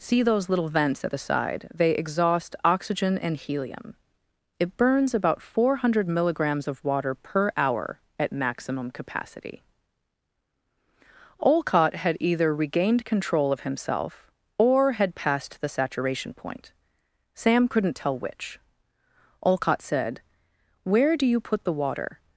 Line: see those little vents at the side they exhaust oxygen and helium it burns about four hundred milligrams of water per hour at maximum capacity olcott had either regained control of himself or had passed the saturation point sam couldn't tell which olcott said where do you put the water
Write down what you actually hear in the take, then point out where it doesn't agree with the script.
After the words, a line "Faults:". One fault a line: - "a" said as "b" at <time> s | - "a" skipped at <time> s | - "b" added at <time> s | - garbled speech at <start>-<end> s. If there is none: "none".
see those little vents at the side they exhaust oxygen and helium it burns about four hundred milligrams of water per hour at maximum capacity olcott had either regained control of himself or had passed the saturation point sam couldn't tell which olcott said where do you put the water
Faults:
none